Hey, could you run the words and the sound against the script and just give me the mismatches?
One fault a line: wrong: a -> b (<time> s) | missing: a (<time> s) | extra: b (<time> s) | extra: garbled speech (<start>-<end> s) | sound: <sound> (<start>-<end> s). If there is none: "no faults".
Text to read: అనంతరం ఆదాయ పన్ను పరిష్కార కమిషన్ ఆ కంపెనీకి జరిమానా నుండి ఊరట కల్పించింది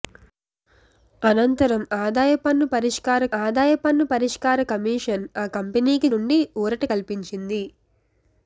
extra: ఆదాయ పన్ను పరిష్కార (3.4 s)
missing: జరిమానా (6.1 s)